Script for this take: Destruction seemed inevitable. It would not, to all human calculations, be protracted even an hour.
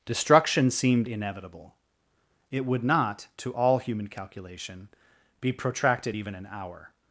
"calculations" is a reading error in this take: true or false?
true